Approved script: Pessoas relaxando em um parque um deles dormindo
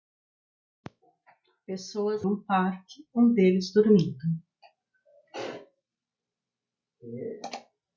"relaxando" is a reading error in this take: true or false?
true